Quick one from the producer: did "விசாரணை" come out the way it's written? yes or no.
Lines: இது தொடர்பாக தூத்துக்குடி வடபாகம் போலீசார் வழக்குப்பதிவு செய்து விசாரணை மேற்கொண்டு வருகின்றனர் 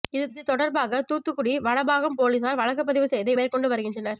no